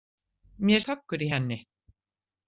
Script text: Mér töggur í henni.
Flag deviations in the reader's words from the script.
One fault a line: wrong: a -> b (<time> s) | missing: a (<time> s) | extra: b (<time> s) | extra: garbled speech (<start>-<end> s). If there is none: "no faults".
no faults